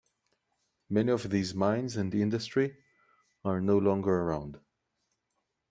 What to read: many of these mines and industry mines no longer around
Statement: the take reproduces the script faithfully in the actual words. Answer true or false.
false